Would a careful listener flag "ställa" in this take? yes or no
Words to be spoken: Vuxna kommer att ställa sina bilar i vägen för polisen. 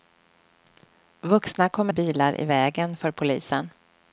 yes